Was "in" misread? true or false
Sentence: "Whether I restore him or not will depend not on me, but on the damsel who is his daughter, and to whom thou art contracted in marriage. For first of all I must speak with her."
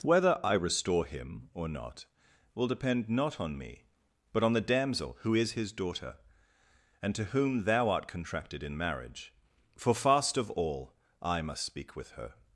false